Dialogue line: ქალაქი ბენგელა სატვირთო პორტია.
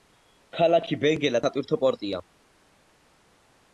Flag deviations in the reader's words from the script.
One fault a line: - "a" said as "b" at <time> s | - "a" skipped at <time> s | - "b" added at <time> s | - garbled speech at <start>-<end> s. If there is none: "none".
none